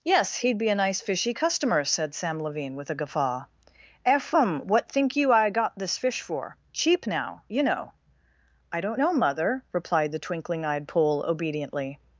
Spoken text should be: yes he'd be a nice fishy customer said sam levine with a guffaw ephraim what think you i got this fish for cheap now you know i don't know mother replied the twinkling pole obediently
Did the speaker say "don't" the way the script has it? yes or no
yes